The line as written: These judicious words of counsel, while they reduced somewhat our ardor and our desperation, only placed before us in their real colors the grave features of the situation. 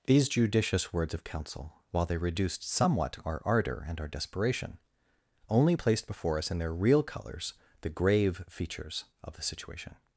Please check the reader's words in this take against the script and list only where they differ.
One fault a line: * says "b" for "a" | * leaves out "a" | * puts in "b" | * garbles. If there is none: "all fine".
all fine